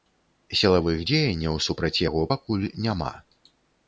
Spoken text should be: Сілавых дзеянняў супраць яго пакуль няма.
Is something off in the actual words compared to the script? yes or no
no